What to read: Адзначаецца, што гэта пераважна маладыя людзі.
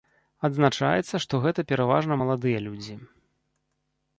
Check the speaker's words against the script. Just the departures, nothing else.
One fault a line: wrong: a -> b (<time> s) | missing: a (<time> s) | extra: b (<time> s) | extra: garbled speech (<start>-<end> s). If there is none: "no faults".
no faults